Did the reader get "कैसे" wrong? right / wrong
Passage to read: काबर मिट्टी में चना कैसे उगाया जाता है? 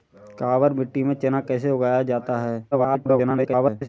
right